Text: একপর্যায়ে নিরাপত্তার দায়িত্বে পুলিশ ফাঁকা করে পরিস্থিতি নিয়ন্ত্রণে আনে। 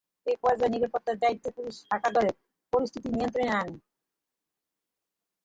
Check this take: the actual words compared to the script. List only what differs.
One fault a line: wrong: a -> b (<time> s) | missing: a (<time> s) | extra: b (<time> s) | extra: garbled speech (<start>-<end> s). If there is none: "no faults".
no faults